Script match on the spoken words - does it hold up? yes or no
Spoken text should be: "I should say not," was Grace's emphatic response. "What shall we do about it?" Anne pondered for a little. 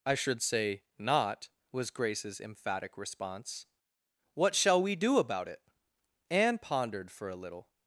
yes